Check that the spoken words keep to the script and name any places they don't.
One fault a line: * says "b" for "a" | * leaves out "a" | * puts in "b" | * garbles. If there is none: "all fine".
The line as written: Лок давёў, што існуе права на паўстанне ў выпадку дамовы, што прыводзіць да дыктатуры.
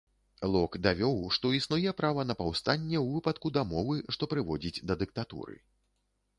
all fine